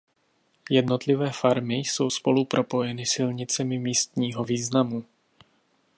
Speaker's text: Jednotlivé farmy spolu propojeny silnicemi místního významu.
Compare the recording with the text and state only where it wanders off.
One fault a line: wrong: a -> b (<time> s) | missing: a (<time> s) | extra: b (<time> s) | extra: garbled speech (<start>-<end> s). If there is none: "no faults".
extra: jsou (1.8 s)